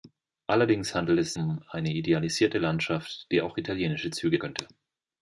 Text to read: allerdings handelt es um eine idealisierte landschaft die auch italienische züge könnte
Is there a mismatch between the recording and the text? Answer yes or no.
no